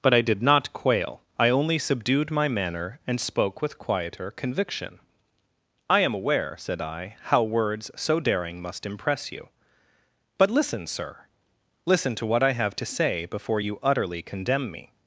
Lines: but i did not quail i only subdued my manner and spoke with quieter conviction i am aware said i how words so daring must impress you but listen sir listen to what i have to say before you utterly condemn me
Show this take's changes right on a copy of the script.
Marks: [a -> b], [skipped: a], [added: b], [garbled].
but i did not quail i only subdued my manner and spoke with quieter conviction i am aware said i how words so daring must impress you but listen sir listen to what i have to say before you utterly condemn me